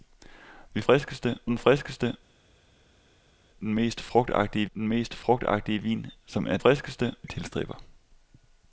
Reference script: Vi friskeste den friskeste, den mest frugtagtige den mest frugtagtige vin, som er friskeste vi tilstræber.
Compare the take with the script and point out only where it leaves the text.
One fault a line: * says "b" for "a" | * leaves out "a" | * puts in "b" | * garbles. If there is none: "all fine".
all fine